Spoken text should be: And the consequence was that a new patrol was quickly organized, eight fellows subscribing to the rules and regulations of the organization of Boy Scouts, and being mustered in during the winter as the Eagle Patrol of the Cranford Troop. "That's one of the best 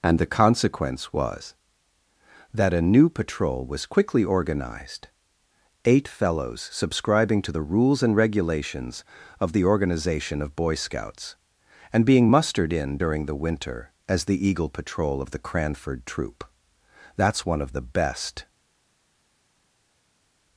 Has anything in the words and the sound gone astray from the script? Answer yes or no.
no